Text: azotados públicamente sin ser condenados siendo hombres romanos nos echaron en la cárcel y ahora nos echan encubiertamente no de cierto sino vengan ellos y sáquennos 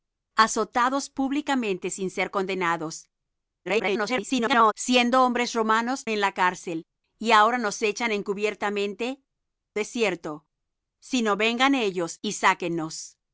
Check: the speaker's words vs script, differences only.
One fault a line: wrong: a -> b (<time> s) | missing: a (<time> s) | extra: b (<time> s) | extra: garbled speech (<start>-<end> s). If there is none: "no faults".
extra: garbled speech (3.6-4.7 s)
missing: nos echaron (6.0 s)
missing: no (9.2 s)